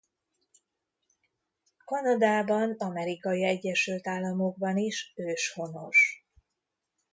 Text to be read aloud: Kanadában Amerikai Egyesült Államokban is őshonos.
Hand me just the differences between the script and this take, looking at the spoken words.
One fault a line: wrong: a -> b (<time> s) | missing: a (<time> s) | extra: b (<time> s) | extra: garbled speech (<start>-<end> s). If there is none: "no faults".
no faults